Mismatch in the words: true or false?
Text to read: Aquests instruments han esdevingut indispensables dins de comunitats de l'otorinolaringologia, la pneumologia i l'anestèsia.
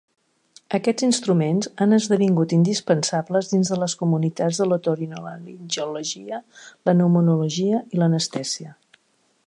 true